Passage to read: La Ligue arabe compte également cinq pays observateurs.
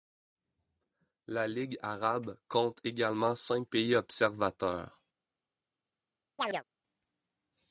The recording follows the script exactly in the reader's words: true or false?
true